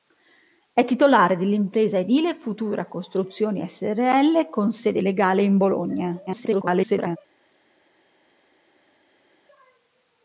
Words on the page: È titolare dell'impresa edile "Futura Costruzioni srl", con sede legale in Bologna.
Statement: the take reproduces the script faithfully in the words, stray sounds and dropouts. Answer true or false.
false